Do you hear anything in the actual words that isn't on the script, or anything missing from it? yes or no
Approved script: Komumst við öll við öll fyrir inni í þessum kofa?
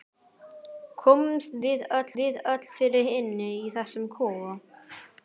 no